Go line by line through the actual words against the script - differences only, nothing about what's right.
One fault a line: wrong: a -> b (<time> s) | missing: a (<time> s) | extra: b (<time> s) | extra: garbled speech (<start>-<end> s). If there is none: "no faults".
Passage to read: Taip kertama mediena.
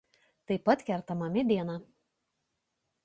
extra: pat (0.7 s)